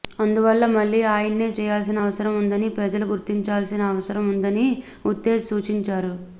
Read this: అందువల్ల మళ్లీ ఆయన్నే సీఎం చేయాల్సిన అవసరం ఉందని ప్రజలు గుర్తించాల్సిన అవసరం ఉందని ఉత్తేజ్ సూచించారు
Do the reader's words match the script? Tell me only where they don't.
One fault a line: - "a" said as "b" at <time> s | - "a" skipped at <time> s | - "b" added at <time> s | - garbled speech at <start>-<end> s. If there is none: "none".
- "సీఎం" skipped at 1.5 s